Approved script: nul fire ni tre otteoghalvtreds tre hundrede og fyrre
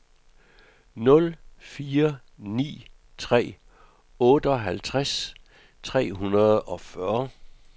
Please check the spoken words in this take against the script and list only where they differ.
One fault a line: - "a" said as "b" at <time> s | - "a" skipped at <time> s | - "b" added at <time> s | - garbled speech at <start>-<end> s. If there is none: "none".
none